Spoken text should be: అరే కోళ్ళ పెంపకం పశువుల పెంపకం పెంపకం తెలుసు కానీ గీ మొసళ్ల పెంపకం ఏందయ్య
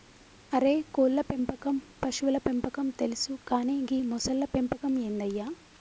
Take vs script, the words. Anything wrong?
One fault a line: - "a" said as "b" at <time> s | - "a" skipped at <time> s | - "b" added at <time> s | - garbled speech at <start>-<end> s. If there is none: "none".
- "పెంపకం" skipped at 2.9 s